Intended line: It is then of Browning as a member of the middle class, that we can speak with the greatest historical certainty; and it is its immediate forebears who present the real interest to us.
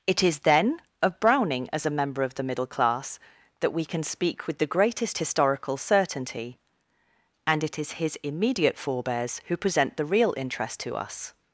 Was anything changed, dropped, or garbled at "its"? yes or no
yes